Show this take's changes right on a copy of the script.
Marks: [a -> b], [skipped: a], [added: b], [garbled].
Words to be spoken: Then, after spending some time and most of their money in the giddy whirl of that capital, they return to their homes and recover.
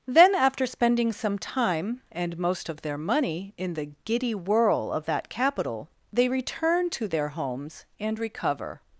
Then, after spending some time and most of their money in the giddy whirl of that capital, they return to their homes and recover.